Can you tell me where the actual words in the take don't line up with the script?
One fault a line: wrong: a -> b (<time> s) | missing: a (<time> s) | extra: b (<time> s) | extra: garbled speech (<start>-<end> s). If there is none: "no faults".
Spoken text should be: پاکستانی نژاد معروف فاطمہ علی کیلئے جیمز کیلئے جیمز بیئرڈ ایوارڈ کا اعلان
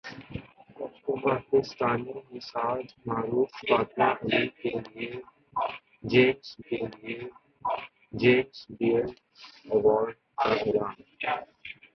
no faults